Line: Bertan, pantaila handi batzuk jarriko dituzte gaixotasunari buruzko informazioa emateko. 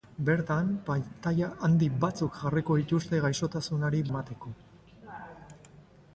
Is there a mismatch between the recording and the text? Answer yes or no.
yes